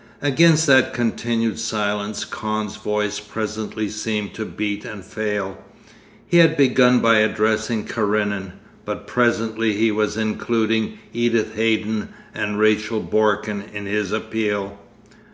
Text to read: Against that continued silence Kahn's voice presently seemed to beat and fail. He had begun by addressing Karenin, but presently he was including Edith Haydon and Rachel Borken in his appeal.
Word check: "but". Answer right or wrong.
right